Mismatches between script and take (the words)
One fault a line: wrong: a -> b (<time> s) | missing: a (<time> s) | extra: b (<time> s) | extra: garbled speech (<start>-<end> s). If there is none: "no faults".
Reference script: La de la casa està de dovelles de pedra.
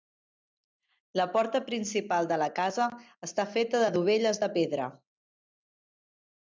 extra: porta principal (1.4 s)
extra: feta (3.6 s)